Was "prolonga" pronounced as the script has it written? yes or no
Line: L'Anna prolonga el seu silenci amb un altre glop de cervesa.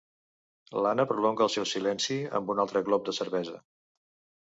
yes